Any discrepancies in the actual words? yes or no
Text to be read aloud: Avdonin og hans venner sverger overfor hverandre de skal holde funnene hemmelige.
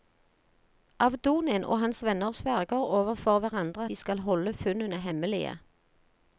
no